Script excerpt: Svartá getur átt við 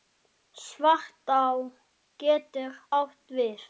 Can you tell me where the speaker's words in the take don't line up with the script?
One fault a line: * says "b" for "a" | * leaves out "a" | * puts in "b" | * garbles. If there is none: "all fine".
all fine